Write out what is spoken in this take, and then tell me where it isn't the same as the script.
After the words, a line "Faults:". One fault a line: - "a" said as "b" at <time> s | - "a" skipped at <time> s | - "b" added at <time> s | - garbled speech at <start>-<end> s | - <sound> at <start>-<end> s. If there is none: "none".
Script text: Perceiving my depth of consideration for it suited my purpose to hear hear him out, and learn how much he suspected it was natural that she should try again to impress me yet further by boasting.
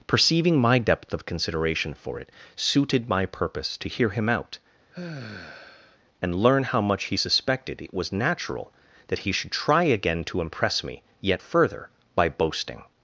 Perceiving my depth of consideration for it suited my purpose to hear him out, and learn how much he suspected it was natural that he should try again to impress me yet further by boasting.
Faults:
- "hear" skipped at 4.1 s
- sigh at 4.9-6.0 s
- "she" said as "he" at 9.2 s